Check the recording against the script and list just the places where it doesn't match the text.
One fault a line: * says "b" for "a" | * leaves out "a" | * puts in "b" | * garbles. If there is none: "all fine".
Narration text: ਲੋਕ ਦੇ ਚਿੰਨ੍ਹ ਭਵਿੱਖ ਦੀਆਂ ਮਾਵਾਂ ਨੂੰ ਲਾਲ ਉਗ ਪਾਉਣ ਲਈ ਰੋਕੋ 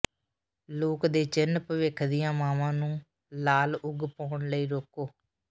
all fine